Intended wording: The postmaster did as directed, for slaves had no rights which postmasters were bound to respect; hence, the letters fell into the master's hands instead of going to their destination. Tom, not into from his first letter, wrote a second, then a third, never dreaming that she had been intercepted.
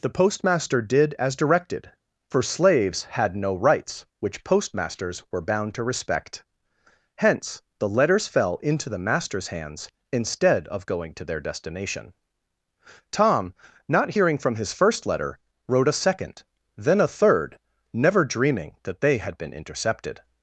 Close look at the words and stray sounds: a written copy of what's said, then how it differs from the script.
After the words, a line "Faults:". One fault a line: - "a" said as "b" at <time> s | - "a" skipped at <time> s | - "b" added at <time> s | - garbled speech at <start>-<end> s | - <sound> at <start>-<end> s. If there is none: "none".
The postmaster did as directed, for slaves had no rights which postmasters were bound to respect; hence, the letters fell into the master's hands instead of going to their destination. Tom, not hearing from his first letter, wrote a second, then a third, never dreaming that they had been intercepted.
Faults:
- "into" said as "hearing" at 14.1 s
- "she" said as "they" at 19.0 s